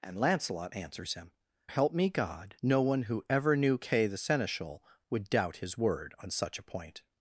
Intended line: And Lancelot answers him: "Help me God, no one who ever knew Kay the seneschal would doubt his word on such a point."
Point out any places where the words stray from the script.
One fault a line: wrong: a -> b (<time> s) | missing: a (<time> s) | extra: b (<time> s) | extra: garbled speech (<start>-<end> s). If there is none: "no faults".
no faults